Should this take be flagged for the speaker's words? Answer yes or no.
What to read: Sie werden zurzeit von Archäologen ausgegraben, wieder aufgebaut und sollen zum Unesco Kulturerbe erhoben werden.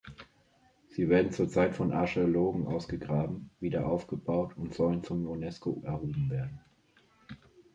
yes